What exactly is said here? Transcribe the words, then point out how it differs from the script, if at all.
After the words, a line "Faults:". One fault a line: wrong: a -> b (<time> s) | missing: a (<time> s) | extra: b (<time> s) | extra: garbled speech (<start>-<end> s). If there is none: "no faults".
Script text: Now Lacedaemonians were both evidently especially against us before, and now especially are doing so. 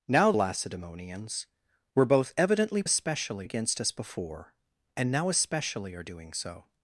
Now Lacedaemonians were both evidently especially against us before, and now especially are doing so.
Faults:
no faults